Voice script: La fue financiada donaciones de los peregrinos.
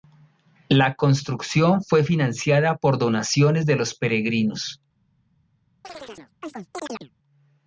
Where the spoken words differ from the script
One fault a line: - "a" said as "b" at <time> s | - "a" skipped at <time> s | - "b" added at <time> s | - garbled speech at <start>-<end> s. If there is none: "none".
- "construcción" added at 0.9 s
- "por" added at 2.8 s